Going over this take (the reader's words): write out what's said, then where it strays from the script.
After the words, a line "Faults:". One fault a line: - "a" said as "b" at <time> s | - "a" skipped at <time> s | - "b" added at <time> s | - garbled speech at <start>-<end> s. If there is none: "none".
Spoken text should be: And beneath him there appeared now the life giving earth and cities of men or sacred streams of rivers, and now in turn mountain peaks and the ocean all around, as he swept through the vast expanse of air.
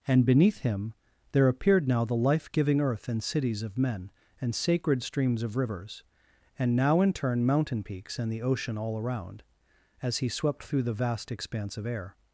And beneath him there appeared now the life giving earth and cities of men and sacred streams of rivers, and now in turn mountain peaks and the ocean all around, as he swept through the vast expanse of air.
Faults:
- "or" said as "and" at 4.4 s